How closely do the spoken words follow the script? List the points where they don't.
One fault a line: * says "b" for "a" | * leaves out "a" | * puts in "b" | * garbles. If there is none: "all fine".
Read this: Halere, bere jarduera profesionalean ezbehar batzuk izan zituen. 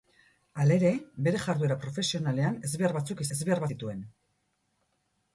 * says "ezbehar" for "izan"